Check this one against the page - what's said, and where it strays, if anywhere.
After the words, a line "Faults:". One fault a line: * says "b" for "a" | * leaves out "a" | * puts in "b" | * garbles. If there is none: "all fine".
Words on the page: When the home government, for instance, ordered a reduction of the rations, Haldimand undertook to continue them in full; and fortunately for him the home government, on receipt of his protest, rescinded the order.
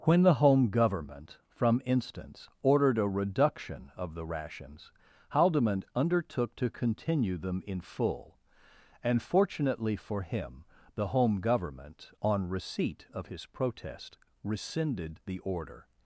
When the home government, from instance, ordered a reduction of the rations, Haldimand undertook to continue them in full; and fortunately for him the home government, on receipt of his protest, rescinded the order.
Faults:
* says "from" for "for"